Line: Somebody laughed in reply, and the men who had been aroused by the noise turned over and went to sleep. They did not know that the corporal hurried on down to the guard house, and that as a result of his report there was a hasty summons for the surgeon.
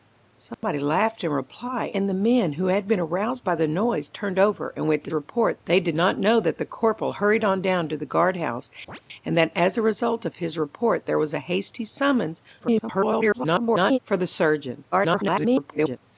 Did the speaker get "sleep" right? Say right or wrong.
wrong